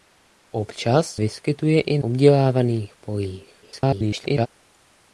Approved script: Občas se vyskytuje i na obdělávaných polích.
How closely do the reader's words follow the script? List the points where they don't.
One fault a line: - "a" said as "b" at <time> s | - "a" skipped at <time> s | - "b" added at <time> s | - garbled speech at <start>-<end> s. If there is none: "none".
- "se" skipped at 1.1 s
- "na" skipped at 2.0 s
- garbled speech at 3.6-4.5 s